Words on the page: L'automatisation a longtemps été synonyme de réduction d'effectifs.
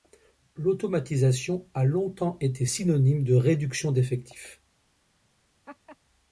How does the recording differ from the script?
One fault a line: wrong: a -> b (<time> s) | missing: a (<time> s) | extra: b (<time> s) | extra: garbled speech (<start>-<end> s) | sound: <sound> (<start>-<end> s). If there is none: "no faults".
sound: laugh (5.7-6.0 s)